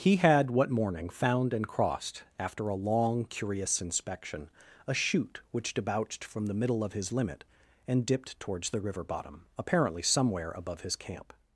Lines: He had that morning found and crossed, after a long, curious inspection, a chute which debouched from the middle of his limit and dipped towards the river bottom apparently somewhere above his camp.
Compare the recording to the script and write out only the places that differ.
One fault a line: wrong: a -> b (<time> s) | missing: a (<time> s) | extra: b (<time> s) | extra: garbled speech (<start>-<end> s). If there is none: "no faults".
wrong: that -> what (0.5 s)